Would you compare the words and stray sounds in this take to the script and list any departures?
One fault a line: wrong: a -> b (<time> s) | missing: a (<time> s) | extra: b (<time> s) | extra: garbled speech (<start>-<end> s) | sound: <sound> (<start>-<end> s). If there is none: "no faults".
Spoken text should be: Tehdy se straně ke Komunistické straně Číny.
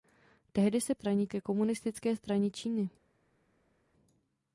no faults